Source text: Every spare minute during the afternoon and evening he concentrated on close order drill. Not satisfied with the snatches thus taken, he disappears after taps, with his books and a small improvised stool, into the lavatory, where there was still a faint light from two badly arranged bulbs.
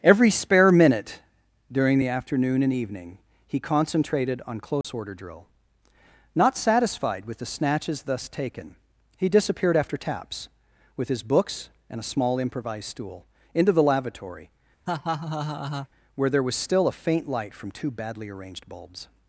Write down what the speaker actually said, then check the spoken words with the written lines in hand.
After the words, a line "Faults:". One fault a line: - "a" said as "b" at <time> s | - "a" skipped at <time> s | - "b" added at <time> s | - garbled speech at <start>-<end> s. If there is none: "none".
Every spare minute during the afternoon and evening he concentrated on close order drill. Not satisfied with the snatches thus taken, he disappeared after taps, with his books and a small improvised stool, into the lavatory, where there was still a faint light from two badly arranged bulbs.
Faults:
- "disappears" said as "disappeared" at 9.3 s